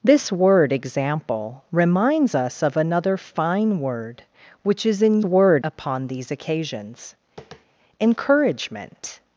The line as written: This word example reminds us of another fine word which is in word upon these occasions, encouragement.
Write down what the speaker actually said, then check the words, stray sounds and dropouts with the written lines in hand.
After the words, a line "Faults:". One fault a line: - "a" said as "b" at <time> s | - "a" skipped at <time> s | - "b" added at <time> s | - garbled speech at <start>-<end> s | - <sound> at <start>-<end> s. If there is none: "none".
This word example reminds us of another fine word which is in word upon these occasions, encouragement.
Faults:
- tap at 7.4-7.7 s